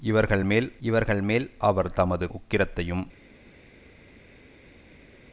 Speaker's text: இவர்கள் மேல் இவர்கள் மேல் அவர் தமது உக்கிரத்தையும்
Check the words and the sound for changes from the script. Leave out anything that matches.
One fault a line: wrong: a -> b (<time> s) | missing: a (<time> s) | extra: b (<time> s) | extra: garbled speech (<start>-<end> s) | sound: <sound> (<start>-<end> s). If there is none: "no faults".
no faults